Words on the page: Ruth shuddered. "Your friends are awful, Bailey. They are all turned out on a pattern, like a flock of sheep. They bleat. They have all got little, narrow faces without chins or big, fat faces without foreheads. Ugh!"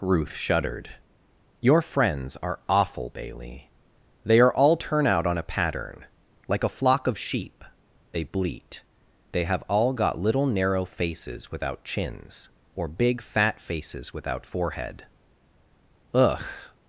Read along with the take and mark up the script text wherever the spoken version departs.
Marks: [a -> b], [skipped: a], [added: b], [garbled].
Ruth shuddered. "Your friends are awful, Bailey. They are all [turned -> turn] out on a pattern, like a flock of sheep. They bleat. They have all got little, narrow faces without chins or big, fat faces without [foreheads. -> forehead] Ugh!"